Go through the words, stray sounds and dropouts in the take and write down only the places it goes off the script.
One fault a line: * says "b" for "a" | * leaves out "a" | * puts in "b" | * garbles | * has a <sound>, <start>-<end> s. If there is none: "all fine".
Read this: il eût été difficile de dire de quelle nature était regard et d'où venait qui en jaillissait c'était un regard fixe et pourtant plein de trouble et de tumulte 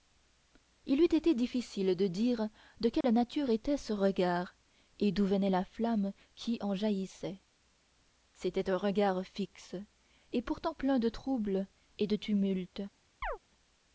* has a dropout, 3.0-3.0 s
* puts in "ce"
* puts in "la flamme"
* has a chirp, 13.2-13.4 s